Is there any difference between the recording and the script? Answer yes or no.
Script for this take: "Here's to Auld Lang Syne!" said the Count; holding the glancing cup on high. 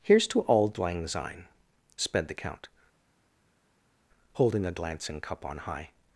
yes